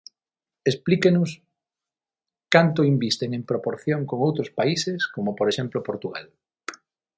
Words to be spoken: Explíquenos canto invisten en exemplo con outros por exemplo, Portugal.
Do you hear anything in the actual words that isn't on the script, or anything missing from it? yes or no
yes